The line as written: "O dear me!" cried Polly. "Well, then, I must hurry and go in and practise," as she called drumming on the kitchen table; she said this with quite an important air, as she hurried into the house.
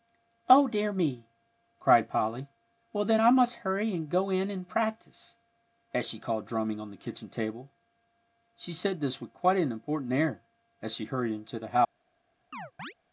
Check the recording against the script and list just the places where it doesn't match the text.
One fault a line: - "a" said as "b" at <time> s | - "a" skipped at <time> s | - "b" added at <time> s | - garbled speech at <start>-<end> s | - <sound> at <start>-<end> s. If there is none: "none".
- chirp at 12.5-12.9 s